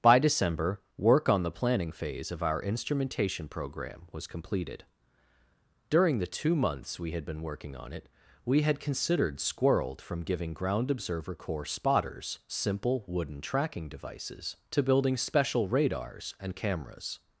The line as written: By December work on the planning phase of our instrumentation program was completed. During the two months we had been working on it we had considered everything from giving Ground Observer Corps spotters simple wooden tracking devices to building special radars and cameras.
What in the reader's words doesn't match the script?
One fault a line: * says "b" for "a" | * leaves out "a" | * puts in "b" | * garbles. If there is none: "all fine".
* says "squirreled" for "everything"